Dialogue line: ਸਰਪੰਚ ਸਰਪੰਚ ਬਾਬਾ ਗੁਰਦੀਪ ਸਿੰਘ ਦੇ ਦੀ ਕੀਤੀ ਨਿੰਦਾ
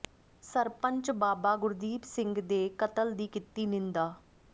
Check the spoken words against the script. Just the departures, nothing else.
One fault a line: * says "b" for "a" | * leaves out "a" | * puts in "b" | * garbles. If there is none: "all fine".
* leaves out "ਸਰਪੰਚ"
* puts in "ਕਤਲ"